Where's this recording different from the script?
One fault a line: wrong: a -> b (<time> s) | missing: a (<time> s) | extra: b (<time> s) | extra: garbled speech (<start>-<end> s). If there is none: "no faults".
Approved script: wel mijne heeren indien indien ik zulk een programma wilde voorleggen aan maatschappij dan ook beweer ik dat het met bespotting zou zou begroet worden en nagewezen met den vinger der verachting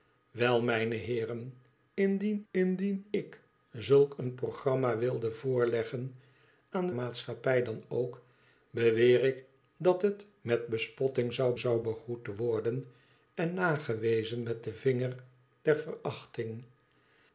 no faults